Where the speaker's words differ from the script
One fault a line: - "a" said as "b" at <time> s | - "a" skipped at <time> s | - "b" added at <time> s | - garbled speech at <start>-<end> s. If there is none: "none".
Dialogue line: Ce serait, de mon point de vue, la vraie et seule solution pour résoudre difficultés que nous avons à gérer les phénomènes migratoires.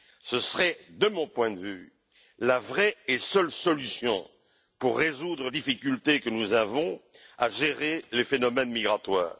none